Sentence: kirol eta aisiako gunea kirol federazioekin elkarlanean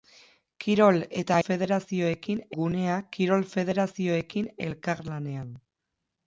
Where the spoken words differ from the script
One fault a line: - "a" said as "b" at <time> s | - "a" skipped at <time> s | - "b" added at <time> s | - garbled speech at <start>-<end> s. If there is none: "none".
- "aisiako" said as "federazioekin" at 1.5 s